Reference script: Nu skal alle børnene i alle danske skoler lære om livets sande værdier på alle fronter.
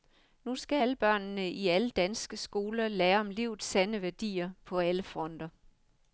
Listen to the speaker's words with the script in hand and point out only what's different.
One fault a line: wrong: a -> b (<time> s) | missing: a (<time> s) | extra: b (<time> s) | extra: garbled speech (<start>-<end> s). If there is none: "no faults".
no faults